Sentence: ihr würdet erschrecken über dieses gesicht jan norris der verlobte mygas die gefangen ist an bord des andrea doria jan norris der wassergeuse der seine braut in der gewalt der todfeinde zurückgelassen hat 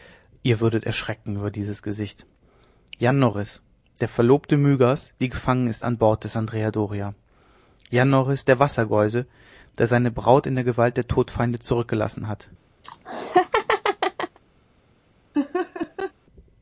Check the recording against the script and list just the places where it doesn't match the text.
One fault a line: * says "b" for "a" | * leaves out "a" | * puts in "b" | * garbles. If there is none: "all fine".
all fine